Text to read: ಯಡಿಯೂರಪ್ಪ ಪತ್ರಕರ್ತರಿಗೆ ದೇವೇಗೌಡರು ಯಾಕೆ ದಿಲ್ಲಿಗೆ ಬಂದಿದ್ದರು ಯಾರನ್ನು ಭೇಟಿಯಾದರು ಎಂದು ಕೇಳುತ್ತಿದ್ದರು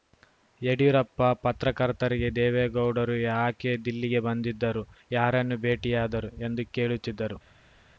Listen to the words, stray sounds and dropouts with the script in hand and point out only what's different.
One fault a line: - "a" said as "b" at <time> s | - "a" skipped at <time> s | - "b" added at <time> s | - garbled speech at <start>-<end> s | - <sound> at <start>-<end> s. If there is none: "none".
none